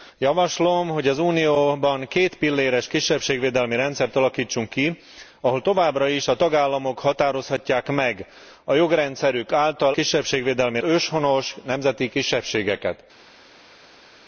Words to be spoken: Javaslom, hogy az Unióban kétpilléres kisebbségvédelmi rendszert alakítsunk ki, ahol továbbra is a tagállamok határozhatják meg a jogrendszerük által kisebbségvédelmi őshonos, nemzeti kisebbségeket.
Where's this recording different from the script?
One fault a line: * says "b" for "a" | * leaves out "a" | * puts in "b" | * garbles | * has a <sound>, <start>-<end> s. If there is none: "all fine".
all fine